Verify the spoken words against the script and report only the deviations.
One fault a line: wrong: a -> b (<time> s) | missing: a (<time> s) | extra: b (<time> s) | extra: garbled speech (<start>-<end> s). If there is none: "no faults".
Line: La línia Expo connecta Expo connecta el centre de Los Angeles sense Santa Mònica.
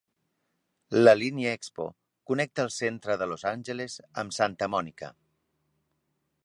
missing: Expo connecta (2.6 s)
wrong: sense -> amb (4.2 s)